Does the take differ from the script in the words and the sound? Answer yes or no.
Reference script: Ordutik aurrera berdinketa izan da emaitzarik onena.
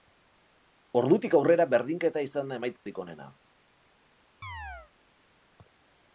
yes